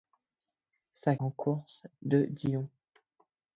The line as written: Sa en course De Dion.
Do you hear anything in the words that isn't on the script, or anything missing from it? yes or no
no